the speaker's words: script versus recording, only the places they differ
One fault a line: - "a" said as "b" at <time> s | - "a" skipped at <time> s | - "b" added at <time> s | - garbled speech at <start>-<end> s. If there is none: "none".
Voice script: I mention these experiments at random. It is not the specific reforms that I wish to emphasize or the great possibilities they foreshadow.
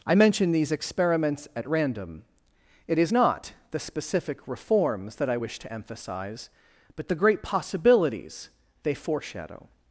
- "or" said as "but" at 7.0 s